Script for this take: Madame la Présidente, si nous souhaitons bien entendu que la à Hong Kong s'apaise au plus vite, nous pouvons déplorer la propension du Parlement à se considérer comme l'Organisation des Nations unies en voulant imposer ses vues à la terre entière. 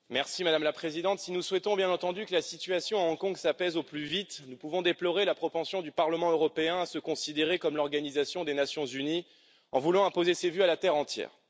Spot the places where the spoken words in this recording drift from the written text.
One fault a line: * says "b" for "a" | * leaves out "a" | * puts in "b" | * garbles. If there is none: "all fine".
* puts in "situation"
* puts in "européen"